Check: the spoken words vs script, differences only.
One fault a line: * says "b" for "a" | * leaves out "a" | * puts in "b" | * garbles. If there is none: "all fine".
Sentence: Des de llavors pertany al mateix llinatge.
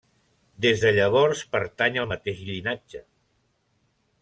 all fine